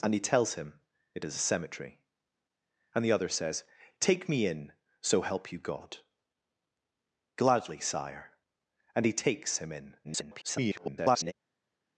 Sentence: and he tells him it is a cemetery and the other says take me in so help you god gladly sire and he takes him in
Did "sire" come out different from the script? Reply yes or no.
no